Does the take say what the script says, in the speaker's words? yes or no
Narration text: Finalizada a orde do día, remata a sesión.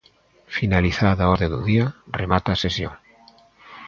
yes